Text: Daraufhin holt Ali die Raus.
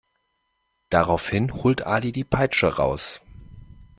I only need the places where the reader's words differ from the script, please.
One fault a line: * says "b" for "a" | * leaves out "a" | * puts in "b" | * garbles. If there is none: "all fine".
* puts in "Peitsche"